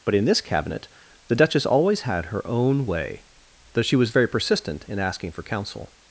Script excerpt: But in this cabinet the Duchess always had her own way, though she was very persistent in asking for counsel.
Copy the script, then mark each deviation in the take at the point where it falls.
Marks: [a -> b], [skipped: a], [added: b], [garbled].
But in this cabinet the Duchess always had her own way, though she was very persistent in asking for counsel.